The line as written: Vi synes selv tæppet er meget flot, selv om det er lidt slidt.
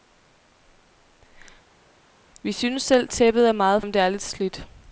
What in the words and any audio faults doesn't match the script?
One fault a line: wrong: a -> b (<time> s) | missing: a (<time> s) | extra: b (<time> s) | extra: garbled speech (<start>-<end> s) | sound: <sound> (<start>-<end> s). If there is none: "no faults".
missing: flot selv (3.8 s)